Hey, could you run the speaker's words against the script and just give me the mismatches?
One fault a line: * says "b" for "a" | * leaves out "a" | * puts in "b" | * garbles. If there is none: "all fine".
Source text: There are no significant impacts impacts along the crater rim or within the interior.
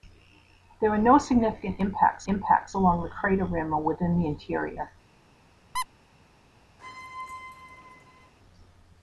all fine